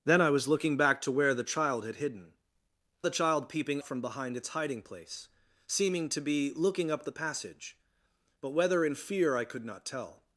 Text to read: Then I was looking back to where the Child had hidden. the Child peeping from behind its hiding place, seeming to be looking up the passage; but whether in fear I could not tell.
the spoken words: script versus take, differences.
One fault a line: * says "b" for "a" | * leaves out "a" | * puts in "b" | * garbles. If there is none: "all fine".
all fine